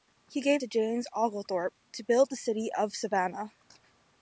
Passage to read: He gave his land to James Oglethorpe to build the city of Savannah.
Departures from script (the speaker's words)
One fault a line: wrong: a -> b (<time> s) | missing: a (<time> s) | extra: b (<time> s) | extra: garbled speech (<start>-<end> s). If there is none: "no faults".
missing: his land (0.6 s)